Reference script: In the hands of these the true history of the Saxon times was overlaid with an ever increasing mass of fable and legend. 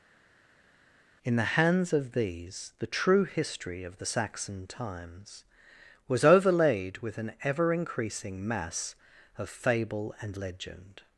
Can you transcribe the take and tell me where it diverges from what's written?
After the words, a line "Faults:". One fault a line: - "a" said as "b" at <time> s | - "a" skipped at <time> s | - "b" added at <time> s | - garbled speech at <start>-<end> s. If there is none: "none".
In the hands of these the true history of the Saxon times was overlaid with an ever increasing mass of fable and legend.
Faults:
none